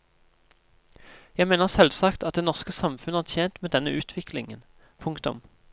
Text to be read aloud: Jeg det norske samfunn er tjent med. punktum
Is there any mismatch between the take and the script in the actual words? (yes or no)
yes